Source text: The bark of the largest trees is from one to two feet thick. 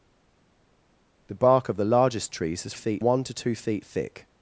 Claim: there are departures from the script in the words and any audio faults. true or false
true